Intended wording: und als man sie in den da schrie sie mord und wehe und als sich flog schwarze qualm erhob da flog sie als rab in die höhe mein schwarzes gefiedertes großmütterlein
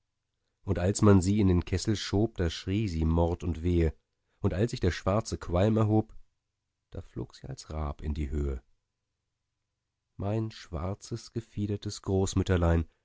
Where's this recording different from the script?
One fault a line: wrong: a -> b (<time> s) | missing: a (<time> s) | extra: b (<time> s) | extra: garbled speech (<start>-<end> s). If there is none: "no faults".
extra: kessel schob (1.6 s)
wrong: flog -> der (4.8 s)